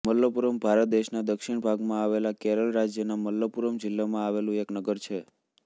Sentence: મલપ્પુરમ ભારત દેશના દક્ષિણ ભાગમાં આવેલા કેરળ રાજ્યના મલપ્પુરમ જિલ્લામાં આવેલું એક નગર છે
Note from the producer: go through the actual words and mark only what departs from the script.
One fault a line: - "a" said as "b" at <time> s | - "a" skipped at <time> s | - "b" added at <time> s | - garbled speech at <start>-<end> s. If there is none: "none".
none